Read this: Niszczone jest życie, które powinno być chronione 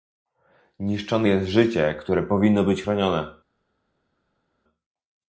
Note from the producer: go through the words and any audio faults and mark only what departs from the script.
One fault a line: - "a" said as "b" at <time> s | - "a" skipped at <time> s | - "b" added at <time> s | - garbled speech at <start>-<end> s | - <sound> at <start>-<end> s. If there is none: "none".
none